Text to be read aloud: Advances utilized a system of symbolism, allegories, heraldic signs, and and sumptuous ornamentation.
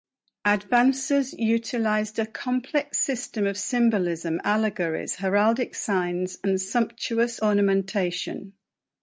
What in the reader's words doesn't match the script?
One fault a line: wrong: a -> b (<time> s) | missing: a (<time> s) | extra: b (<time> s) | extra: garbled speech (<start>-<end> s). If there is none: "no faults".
extra: complex (2.2 s)
missing: and (6.6 s)